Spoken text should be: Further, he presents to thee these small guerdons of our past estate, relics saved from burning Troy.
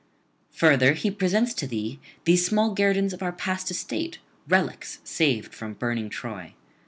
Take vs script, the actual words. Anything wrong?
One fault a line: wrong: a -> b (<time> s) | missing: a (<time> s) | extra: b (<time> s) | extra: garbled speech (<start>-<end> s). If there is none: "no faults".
no faults